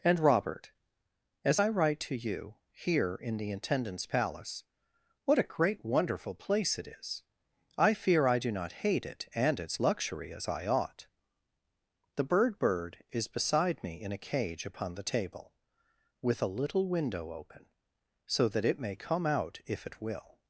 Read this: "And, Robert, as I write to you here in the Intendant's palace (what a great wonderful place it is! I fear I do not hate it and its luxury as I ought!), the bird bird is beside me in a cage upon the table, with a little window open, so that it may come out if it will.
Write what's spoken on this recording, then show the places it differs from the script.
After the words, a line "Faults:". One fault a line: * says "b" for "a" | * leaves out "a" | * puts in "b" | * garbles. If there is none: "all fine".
"And, Robert, as I write to you here in the Intendant's palace (what a great wonderful place it is! I fear I do not hate it and its luxury as I ought!), the bird bird is beside me in a cage upon the table, with a little window open, so that it may come out if it will.
Faults:
all fine